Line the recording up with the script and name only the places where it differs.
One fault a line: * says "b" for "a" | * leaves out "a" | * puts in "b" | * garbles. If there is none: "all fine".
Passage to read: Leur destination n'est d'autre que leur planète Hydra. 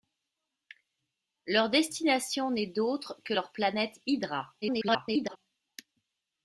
* garbles